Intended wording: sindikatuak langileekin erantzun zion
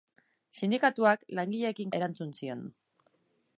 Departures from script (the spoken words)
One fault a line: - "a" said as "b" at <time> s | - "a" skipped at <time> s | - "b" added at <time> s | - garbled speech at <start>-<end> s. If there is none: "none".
none